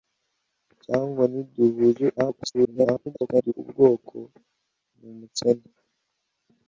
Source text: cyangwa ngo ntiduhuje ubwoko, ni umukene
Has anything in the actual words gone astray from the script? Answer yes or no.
yes